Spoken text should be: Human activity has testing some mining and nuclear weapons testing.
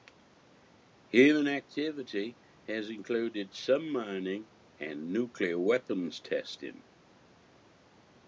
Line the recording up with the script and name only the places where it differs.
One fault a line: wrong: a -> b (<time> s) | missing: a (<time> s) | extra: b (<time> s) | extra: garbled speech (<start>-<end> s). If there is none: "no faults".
wrong: testing -> included (2.9 s)